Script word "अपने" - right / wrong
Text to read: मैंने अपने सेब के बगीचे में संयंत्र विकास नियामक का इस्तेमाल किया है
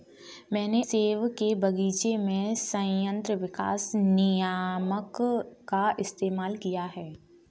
wrong